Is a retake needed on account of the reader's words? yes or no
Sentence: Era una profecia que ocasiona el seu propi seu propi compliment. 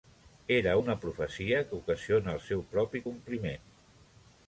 yes